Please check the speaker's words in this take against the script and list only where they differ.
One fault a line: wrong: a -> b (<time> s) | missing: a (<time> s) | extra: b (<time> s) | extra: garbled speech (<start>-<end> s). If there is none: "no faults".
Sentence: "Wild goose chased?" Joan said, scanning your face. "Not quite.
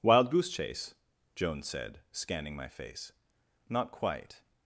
wrong: chased -> chase (0.5 s)
wrong: your -> my (2.5 s)